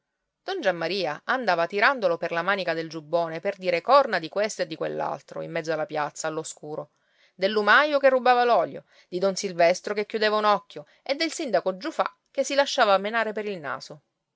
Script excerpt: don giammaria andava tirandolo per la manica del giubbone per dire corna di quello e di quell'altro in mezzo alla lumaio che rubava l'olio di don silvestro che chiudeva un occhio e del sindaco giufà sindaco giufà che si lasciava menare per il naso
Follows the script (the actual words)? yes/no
no